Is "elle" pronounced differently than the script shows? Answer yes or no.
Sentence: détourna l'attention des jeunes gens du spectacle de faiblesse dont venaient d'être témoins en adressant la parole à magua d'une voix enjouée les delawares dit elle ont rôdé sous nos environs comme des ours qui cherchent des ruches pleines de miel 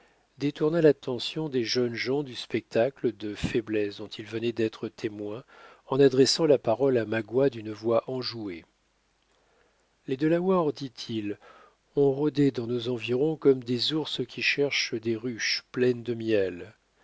yes